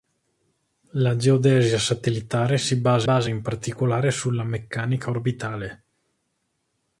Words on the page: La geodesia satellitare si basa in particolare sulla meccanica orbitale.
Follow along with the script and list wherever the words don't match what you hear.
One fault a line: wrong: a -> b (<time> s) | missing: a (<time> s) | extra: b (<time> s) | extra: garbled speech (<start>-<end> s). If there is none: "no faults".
extra: basa (3.0 s)